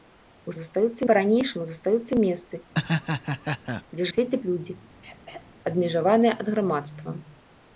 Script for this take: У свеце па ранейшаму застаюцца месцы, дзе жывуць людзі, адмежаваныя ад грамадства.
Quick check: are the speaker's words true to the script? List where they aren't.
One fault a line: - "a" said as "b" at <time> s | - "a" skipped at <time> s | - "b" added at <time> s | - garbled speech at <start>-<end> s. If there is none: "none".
- "свеце" said as "застаюцца" at 0.6 s
- "жывуць" said as "свеце" at 4.1 s